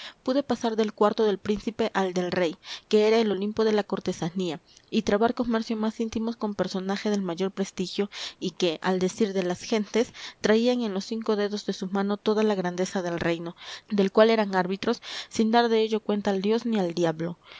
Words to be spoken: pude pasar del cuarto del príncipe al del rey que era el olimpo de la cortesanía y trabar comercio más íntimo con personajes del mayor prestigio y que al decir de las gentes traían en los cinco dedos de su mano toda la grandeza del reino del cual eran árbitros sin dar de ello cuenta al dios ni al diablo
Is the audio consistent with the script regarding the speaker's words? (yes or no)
yes